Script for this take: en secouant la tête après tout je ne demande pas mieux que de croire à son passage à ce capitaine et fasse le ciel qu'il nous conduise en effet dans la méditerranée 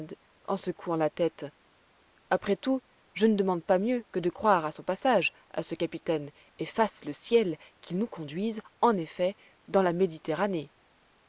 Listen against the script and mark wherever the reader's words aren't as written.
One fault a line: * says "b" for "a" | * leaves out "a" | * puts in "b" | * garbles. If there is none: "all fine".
all fine